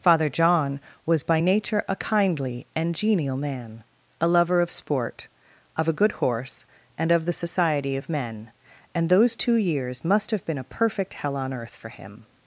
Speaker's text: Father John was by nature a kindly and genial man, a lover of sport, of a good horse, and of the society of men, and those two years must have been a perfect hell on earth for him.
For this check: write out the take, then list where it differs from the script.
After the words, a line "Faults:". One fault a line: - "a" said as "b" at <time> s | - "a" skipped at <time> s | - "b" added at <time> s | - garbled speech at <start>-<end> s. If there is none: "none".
Father John was by nature a kindly and genial man, a lover of sport, of a good horse, and of the society of men, and those two years must have been a perfect hell on earth for him.
Faults:
none